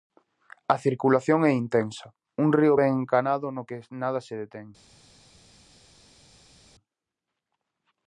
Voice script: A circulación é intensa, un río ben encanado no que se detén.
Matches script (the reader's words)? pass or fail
fail